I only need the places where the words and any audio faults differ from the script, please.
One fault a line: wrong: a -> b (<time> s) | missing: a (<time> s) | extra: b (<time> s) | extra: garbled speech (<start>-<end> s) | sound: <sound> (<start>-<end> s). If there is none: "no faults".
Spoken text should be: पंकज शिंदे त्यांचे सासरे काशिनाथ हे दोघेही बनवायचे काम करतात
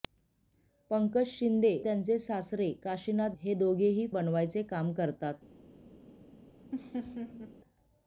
sound: laugh (6.7-7.5 s)